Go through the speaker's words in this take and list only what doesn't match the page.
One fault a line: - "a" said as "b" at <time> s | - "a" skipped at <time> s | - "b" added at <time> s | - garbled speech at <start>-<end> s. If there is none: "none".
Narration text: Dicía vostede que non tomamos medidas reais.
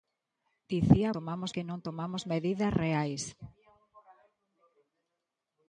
- "vostede" said as "tomamos" at 1.2 s